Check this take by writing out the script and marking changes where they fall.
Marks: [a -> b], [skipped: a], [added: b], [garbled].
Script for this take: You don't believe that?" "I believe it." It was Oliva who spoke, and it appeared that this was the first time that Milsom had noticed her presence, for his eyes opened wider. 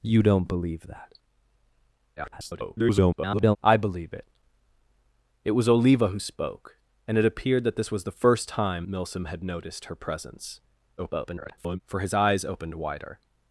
You don't believe that?" [garbled] "I believe it." It was Oliva who spoke, and it appeared that this was the first time [skipped: that] Milsom had noticed her presence, [garbled] for his eyes opened wider.